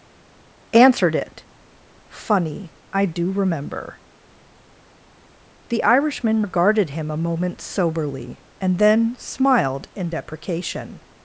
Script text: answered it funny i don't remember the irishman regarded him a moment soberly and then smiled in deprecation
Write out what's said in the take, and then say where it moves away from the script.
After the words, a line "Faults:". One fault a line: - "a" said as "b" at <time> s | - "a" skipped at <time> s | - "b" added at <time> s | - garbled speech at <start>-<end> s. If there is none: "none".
answered it funny i do remember the irishman regarded him a moment soberly and then smiled in deprecation
Faults:
- "don't" said as "do" at 3.1 s